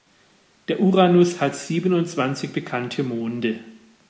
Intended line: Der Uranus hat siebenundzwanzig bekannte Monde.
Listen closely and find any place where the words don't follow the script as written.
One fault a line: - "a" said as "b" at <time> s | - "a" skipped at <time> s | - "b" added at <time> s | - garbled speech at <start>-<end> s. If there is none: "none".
none